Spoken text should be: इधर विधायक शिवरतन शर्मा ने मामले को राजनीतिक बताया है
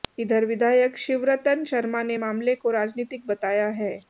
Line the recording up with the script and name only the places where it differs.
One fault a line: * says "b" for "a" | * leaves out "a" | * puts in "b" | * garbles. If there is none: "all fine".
all fine